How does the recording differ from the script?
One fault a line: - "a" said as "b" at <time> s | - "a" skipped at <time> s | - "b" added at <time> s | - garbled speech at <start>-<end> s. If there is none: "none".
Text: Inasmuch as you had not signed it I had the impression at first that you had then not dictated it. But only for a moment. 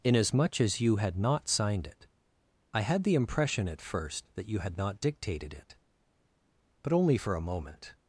- "then" skipped at 4.8 s